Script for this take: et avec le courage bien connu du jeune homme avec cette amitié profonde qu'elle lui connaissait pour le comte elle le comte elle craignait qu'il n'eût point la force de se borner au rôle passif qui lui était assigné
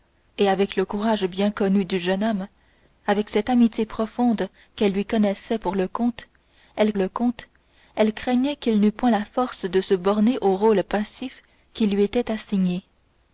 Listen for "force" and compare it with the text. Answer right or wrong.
right